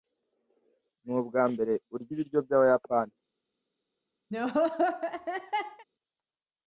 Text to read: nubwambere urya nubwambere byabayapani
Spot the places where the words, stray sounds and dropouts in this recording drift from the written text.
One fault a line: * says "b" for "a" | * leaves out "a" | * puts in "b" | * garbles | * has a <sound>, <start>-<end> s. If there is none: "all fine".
* says "ibiryo" for "nubwambere"
* has a laugh, 4.3-5.9 s